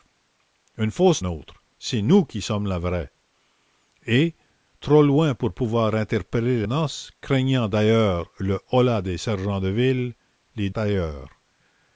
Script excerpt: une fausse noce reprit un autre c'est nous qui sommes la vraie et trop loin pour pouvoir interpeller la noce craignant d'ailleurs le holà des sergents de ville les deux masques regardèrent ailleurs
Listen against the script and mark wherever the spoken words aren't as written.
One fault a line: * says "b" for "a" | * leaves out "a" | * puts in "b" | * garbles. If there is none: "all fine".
* leaves out "noce reprit un"
* leaves out "la"
* leaves out "deux masques regardèrent"